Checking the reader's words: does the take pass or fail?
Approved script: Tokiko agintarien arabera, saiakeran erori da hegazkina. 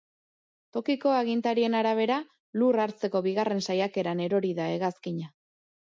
fail